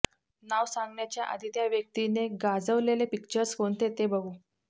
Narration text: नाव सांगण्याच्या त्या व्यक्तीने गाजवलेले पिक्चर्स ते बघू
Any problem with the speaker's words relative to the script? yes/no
yes